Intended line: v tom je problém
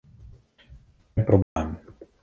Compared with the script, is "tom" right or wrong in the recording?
wrong